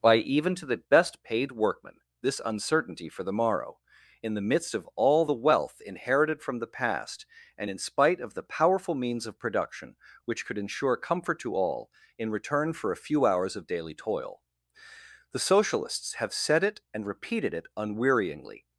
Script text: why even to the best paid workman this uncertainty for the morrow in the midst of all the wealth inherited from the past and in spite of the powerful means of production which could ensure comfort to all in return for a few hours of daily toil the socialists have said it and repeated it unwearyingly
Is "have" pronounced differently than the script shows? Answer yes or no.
no